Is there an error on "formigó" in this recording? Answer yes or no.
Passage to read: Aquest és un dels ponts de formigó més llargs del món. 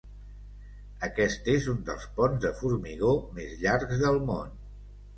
no